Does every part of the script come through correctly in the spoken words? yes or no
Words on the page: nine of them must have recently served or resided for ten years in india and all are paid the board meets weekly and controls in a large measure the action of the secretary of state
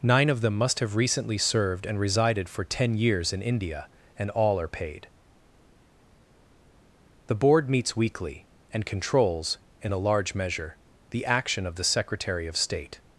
no